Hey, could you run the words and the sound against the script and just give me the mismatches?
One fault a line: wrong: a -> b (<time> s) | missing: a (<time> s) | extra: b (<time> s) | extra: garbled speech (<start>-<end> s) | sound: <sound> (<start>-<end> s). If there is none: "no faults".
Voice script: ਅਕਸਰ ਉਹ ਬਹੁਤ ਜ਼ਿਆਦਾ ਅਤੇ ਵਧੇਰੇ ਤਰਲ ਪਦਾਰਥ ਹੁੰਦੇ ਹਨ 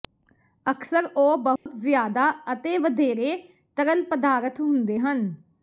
sound: dropout (1.6-1.7 s)